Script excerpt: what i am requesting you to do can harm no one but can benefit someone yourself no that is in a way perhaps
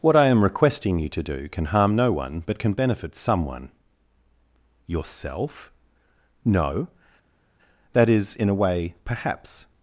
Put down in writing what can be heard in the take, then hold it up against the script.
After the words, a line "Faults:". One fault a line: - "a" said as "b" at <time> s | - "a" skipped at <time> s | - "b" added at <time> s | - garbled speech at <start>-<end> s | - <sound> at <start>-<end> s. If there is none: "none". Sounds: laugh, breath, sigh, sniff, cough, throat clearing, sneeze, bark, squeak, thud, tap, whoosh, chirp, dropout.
what i am requesting you to do can harm no one but can benefit someone yourself no that is in a way perhaps
Faults:
none